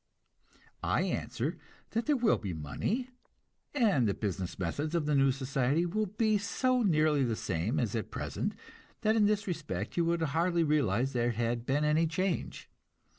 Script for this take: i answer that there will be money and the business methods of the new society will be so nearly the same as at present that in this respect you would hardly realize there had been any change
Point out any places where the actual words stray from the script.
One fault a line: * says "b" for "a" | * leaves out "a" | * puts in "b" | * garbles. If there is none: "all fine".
all fine